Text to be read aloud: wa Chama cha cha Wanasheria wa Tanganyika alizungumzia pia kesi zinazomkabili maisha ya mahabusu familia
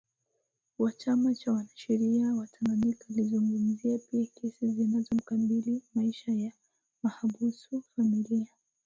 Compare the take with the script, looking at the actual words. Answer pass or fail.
fail